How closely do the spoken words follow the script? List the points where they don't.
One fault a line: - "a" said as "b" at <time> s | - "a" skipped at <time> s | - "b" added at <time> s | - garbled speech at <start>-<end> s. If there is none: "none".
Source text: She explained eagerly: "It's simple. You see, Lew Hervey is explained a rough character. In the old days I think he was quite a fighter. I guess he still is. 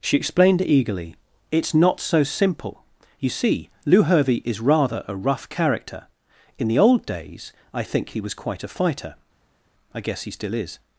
- "not so" added at 1.7 s
- "explained" said as "rather" at 4.6 s